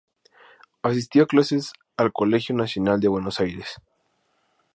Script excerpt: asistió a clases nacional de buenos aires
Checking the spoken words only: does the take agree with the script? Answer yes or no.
no